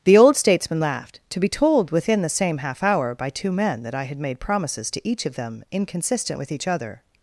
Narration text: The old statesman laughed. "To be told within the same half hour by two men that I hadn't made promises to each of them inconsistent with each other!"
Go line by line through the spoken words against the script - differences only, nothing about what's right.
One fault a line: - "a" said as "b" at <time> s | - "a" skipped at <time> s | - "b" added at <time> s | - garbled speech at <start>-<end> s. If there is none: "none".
- "hadn't" said as "had" at 4.0 s